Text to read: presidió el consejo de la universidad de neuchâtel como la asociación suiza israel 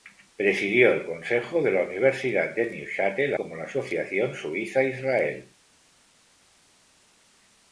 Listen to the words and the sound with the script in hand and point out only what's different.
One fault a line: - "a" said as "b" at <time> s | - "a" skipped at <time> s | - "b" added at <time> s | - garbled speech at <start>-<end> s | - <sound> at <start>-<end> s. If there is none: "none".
none